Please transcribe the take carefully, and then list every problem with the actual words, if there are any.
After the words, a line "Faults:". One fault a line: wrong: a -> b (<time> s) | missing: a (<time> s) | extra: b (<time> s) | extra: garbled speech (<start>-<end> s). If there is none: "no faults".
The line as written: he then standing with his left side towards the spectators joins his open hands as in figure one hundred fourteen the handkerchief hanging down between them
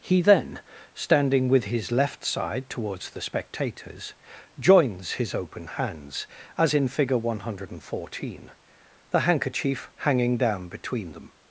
he then standing with his left side towards the spectators joins his open hands as in figure one hundred fourteen the handkerchief hanging down between them
Faults:
no faults